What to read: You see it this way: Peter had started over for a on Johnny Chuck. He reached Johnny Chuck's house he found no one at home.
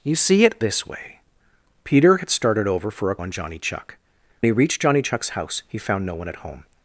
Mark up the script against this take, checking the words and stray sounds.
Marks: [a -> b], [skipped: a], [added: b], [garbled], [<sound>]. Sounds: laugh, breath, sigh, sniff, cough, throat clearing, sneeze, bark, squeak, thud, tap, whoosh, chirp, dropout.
You see it this way: Peter had started over for a on Johnny Chuck. He reached Johnny Chuck's house he found no one at home.